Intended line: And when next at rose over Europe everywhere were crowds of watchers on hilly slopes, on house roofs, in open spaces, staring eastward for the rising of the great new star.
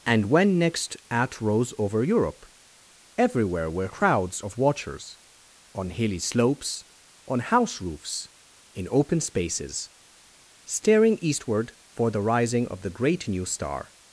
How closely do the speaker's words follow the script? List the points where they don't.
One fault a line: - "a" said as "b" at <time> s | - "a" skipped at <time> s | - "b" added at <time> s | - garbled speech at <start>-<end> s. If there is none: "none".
none